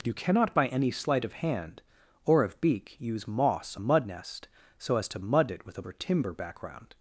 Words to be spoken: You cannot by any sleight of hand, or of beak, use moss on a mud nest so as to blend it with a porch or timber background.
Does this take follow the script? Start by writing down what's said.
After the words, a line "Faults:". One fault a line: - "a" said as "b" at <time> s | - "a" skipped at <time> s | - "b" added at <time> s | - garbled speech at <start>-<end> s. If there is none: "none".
You cannot by any sleight of hand, or of beak, use moss a mud nest so as to mud it with a or timber background.
Faults:
- "on" skipped at 3.8 s
- "blend" said as "mud" at 5.2 s
- "porch" skipped at 5.8 s